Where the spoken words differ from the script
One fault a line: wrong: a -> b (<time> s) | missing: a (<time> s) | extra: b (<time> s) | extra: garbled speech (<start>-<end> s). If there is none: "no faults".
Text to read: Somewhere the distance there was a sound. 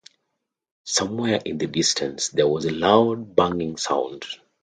extra: in (1.4 s)
extra: loud banging (2.7 s)